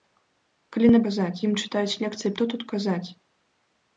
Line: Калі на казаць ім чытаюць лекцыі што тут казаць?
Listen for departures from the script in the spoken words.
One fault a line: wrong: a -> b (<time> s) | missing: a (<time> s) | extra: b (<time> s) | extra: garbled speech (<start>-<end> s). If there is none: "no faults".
no faults